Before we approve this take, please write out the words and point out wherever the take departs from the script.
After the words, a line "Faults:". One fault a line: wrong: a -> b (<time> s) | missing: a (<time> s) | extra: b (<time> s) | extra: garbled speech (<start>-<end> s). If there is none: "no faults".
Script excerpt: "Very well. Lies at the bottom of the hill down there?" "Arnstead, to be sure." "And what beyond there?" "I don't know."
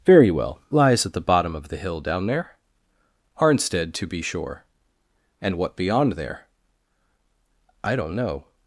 "Very well. Lies at the bottom of the hill down there?" "Arnstead, to be sure." "And what beyond there?" "I don't know."
Faults:
no faults